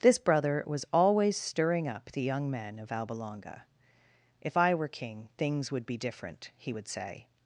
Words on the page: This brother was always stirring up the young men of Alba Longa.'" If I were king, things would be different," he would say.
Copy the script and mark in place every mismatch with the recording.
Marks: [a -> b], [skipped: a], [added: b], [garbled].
This brother was always stirring up the young men of Alba Longa.'" If I were king, things would be different," he would say.